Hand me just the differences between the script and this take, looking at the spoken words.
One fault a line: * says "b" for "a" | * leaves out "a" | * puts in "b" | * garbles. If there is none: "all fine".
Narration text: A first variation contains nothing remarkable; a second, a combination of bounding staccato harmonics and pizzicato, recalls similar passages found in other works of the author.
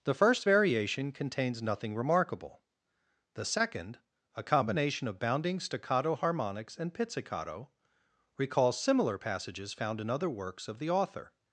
* says "The" for "A"
* says "the" for "a"